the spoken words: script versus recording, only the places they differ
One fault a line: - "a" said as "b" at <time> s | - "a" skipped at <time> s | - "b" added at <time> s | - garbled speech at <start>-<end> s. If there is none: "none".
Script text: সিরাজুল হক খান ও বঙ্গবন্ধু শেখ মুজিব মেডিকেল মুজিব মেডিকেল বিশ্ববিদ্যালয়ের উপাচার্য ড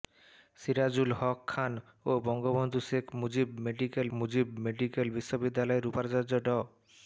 none